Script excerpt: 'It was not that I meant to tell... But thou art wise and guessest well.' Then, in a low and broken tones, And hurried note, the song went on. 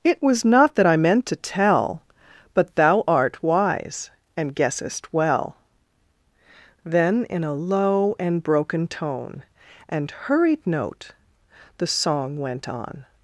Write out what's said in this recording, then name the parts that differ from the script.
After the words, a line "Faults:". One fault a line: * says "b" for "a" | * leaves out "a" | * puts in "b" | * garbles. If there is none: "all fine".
'It was not that I meant to tell... But thou art wise and guessest well.' Then, in a low and broken tone, And hurried note, the song went on.
Faults:
* says "tone" for "tones"